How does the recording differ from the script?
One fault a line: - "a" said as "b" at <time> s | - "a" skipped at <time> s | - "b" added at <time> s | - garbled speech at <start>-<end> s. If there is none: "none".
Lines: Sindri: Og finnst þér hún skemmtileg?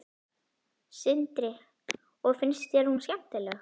none